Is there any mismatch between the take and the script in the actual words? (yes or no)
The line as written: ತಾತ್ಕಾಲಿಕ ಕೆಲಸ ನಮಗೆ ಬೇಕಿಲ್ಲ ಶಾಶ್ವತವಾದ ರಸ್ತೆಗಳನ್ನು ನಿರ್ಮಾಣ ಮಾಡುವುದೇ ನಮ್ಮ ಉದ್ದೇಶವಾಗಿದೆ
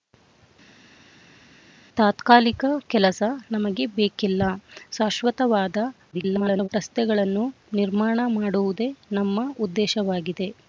yes